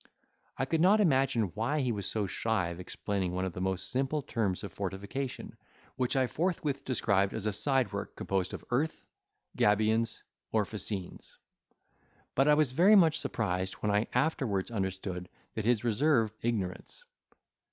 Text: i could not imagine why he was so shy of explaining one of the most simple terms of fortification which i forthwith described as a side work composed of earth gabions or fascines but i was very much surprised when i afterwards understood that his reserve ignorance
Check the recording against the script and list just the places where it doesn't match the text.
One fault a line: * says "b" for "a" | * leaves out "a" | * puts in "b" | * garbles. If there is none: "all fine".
all fine